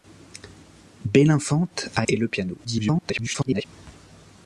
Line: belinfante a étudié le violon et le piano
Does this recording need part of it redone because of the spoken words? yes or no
yes